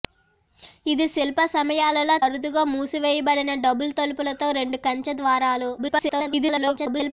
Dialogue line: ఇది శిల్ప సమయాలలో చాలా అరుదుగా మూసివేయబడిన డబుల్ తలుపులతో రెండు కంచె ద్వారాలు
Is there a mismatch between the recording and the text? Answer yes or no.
yes